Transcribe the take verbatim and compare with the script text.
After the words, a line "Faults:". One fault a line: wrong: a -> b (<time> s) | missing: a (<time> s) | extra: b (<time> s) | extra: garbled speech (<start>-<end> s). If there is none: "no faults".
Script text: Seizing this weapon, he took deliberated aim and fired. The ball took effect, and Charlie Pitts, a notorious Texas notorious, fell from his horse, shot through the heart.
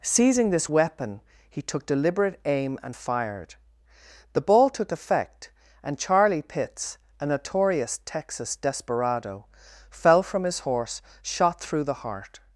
Seizing this weapon, he took deliberate aim and fired. The ball took effect, and Charlie Pitts, a notorious Texas desperado, fell from his horse, shot through the heart.
Faults:
wrong: deliberated -> deliberate (1.8 s)
wrong: notorious -> desperado (8.5 s)